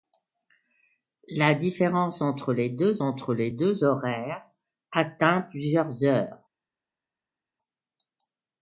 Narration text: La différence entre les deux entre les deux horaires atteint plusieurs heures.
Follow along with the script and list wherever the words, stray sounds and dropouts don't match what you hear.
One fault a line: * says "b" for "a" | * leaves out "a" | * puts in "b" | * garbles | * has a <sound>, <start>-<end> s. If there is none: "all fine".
all fine